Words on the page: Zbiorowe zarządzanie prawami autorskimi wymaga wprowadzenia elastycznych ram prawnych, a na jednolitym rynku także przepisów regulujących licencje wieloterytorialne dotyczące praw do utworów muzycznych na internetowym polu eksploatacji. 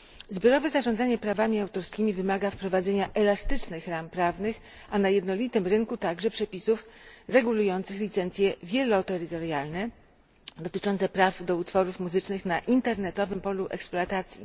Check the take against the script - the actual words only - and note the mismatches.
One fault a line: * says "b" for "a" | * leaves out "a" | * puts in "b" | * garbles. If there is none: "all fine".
all fine